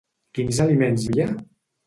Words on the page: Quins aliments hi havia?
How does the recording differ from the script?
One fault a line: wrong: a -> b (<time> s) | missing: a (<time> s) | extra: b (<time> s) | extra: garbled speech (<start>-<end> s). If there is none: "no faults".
missing: hi (1.1 s)